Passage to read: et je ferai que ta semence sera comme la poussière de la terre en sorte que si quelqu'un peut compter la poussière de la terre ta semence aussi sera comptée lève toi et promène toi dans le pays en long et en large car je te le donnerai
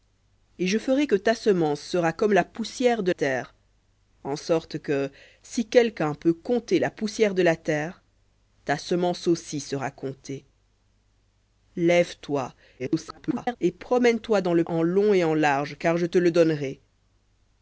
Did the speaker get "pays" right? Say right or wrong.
wrong